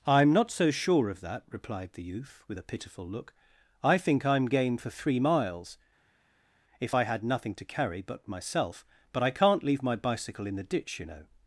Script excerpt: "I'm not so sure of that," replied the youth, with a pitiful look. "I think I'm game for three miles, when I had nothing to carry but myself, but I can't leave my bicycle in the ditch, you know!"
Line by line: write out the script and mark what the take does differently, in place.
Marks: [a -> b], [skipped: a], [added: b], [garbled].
"I'm not so sure of that," replied the youth, with a pitiful look. "I think I'm game for three miles, [when -> if] I had nothing to carry but myself, but I can't leave my bicycle in the ditch, you know!"